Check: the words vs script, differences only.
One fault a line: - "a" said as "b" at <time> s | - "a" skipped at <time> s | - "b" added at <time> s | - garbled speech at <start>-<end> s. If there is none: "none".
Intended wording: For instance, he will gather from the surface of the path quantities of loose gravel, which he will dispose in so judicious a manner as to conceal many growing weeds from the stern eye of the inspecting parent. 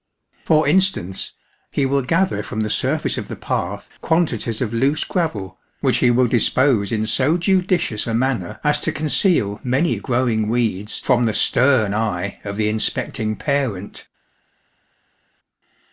none